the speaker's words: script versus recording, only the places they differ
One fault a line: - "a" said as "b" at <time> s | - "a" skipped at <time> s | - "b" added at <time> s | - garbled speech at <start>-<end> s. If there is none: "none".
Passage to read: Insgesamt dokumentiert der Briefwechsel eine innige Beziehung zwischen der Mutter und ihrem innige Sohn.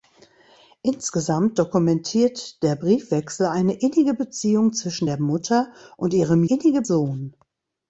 none